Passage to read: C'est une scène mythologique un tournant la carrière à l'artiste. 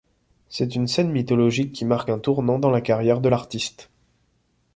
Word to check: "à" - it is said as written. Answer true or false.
false